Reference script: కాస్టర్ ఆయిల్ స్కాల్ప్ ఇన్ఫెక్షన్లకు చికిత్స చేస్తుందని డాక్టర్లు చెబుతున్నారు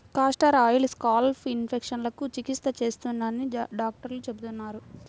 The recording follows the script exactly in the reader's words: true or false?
true